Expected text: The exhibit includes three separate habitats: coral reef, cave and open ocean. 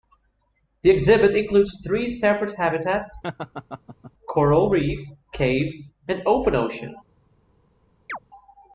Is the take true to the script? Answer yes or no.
yes